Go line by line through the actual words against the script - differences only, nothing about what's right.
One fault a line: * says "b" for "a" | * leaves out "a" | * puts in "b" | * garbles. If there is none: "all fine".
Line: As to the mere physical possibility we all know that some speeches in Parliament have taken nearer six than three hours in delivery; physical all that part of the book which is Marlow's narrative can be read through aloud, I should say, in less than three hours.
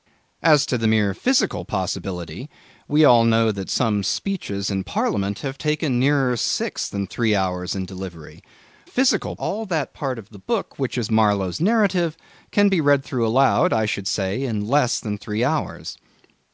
all fine